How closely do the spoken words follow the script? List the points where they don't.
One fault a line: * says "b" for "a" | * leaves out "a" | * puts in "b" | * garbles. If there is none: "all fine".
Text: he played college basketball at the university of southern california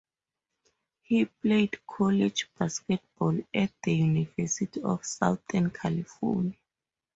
all fine